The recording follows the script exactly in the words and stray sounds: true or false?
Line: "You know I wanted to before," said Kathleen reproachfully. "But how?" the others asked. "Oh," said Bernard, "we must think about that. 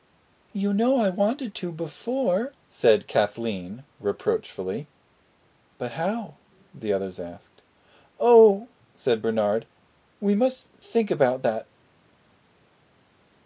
true